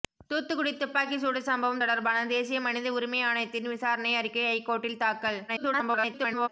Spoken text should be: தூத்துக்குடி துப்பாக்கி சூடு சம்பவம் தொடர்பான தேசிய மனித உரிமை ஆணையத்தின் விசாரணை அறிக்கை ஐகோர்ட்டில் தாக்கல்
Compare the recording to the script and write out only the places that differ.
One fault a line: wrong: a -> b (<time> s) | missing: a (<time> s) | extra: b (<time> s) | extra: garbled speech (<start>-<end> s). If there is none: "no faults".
extra: garbled speech (5.5-6.5 s)